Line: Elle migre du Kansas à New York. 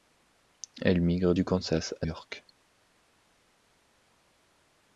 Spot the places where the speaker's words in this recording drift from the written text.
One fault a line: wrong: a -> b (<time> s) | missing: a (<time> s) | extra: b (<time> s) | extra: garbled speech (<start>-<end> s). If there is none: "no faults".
missing: New (2.1 s)